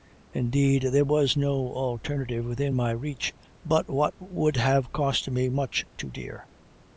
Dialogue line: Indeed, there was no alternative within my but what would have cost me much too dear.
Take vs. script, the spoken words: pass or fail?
fail